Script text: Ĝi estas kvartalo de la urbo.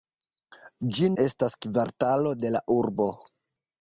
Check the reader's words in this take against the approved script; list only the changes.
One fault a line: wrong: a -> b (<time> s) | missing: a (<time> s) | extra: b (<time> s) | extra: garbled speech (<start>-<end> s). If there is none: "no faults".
no faults